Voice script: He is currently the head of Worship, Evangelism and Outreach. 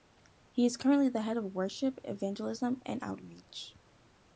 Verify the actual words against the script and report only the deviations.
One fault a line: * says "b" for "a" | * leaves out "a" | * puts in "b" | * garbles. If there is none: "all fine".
all fine